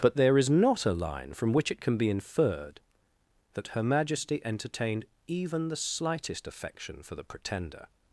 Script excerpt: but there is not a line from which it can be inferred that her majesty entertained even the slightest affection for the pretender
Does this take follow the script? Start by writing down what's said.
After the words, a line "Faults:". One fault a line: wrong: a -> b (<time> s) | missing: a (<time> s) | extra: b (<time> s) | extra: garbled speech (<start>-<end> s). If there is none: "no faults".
but there is not a line from which it can be inferred that her majesty entertained even the slightest affection for the pretender
Faults:
no faults